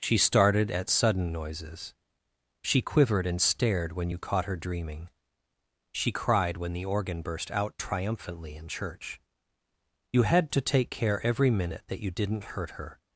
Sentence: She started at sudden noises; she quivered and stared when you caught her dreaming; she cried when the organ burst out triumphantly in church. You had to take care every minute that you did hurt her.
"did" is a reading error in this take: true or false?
true